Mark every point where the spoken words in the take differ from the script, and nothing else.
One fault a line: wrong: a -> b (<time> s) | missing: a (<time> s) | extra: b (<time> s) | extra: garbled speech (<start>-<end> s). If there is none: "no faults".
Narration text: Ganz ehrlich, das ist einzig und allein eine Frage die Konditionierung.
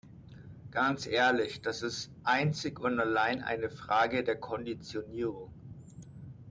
wrong: die -> der (4.2 s)